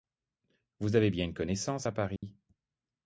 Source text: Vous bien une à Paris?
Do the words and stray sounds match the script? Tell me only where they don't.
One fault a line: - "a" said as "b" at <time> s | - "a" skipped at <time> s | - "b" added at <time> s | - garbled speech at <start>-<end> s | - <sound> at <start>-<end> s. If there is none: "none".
- "avez" added at 0.9 s
- "connaissance" added at 1.4 s
- dropout at 2.2-2.2 s